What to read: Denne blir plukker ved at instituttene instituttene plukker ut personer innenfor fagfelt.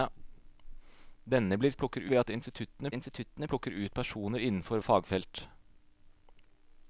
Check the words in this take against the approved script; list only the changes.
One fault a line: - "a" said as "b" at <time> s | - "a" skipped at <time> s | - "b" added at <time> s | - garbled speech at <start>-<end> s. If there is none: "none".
none